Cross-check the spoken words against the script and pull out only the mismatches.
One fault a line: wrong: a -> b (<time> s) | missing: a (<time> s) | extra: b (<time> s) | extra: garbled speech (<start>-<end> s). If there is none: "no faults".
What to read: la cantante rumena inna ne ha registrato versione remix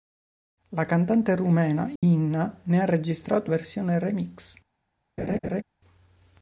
no faults